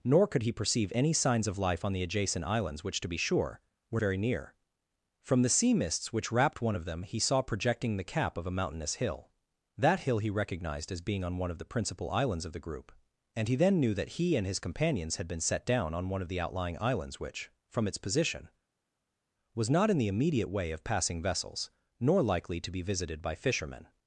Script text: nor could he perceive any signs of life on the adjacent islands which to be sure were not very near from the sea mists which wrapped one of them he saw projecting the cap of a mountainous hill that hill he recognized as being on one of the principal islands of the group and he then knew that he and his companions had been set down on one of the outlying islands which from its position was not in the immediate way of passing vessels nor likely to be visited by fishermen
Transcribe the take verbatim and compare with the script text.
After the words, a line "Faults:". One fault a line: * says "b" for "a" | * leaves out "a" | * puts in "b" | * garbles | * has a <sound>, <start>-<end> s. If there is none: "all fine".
nor could he perceive any signs of life on the adjacent islands which to be sure were very near from the sea mists which wrapped one of them he saw projecting the cap of a mountainous hill that hill he recognized as being on one of the principal islands of the group and he then knew that he and his companions had been set down on one of the outlying islands which from its position was not in the immediate way of passing vessels nor likely to be visited by fishermen
Faults:
* leaves out "not"